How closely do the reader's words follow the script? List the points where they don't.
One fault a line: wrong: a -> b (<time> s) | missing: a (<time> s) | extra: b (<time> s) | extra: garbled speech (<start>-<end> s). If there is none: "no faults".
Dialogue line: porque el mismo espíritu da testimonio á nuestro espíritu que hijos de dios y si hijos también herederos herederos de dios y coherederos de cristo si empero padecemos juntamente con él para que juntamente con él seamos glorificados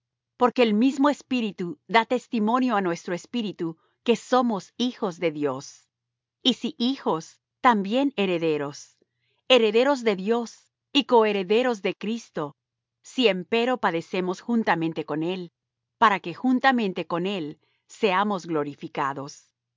extra: somos (4.2 s)